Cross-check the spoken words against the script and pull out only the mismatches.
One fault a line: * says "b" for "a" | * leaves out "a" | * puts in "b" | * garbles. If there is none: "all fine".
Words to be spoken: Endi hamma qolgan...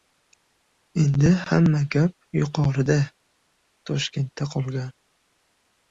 * puts in "gap yuqorida Toshkentda"